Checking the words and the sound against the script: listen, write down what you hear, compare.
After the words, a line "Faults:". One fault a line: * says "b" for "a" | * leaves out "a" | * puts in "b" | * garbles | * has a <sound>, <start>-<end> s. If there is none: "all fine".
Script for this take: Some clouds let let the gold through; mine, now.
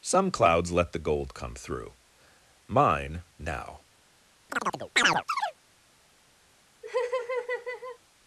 Some clouds let the gold come through; mine, now.
Faults:
* leaves out "let"
* puts in "come"
* has a chirp, 4.5-5.6 s
* has a laugh, 6.8-8.0 s